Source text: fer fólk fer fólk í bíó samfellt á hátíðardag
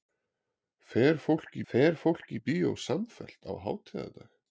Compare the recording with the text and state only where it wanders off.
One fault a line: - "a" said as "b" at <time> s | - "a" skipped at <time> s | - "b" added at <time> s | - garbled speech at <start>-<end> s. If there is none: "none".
none